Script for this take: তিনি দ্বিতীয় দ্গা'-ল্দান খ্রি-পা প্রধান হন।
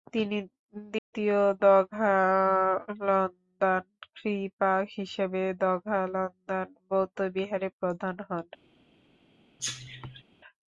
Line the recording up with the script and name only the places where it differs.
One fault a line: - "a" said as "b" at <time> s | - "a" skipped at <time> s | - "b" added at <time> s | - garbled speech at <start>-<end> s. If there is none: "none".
- "হিসেবে দ্গা'-ল্দান বৌদ্ধবিহারের" added at 5.0 s